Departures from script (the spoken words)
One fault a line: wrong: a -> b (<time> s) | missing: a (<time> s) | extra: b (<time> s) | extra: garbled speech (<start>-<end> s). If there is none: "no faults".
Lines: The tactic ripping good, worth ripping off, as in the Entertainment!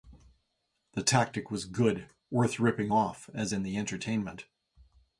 wrong: ripping -> was (1.5 s)